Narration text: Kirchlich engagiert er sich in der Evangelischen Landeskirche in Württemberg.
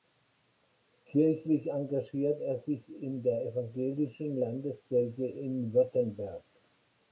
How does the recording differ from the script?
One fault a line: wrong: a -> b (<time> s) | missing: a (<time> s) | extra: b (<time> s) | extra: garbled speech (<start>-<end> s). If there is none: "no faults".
no faults